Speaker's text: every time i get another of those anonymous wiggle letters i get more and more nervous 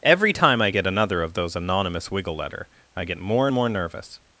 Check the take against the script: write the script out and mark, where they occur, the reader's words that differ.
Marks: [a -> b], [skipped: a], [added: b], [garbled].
every time i get another of those anonymous wiggle [letters -> letter] i get more and more nervous